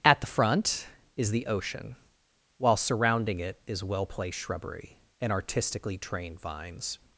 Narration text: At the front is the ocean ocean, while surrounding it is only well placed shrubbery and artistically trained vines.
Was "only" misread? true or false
true